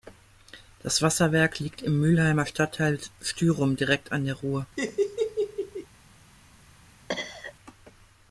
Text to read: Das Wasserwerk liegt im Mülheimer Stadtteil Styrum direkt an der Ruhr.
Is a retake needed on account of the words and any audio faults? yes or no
yes